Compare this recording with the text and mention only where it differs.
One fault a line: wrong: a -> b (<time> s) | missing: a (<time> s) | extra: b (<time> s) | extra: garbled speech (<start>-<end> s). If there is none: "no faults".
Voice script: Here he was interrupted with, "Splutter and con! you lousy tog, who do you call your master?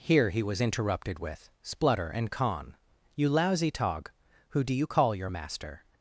no faults